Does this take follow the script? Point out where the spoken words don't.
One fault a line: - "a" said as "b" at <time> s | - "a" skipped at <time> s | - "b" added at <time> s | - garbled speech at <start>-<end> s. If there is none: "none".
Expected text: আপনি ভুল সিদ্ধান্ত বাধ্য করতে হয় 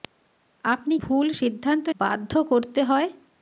none